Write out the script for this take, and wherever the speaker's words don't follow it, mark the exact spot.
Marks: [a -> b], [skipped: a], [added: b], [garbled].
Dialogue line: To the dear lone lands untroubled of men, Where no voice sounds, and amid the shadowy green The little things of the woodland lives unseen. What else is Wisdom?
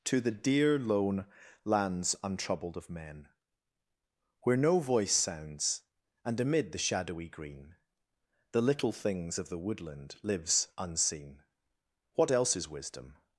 To the dear lone lands untroubled of men, Where no voice sounds, and amid the shadowy green The little things of the woodland lives unseen. What else is Wisdom?